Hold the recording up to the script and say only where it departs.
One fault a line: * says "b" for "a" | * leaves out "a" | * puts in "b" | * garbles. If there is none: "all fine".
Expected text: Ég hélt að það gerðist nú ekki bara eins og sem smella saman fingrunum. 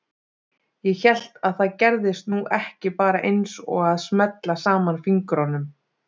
* says "að" for "sem"